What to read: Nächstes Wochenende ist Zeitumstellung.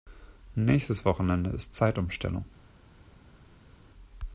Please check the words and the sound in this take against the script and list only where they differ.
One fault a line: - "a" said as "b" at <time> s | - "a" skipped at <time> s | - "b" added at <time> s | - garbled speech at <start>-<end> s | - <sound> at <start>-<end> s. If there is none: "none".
none